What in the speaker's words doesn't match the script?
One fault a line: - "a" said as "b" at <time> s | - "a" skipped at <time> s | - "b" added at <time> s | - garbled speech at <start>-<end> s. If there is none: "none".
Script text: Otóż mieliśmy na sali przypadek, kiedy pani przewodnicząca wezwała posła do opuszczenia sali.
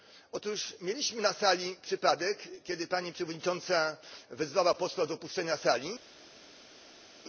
none